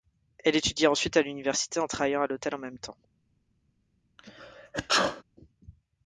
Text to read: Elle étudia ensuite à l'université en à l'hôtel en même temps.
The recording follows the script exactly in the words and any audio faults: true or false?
false